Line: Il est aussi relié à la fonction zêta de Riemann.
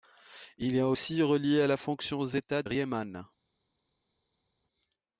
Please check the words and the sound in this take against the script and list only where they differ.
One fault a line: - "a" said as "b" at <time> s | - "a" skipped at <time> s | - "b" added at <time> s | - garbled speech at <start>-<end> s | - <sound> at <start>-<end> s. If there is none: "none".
- "de" skipped at 2.6 s